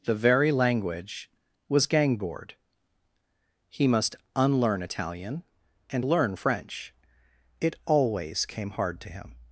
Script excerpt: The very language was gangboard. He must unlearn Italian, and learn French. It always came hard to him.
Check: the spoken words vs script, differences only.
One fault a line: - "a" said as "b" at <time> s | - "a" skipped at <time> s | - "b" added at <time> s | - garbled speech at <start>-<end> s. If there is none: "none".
none